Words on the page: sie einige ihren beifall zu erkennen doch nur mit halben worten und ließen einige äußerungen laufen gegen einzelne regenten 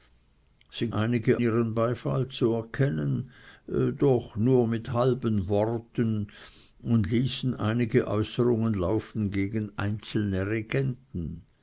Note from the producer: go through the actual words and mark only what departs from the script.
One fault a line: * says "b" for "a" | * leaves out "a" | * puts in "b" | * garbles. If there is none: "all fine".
all fine